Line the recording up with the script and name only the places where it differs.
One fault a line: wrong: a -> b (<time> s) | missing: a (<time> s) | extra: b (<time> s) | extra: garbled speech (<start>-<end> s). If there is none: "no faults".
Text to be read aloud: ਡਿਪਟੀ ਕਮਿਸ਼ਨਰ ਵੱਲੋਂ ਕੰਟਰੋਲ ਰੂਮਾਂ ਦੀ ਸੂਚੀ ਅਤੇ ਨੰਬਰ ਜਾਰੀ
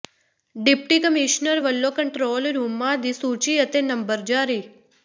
no faults